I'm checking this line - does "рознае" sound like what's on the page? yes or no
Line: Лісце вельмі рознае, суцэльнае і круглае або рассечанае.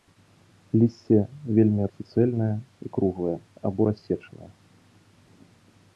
no